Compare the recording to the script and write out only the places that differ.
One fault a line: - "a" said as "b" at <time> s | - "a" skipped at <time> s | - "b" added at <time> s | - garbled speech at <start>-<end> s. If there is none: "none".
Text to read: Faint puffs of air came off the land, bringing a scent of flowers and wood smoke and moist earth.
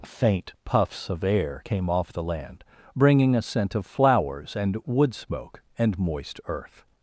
none